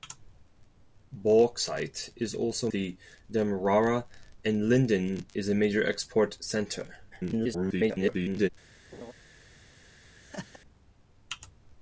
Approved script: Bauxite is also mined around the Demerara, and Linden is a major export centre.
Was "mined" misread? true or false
true